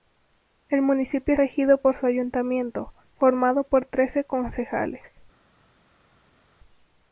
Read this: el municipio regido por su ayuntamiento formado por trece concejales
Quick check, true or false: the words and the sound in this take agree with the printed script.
true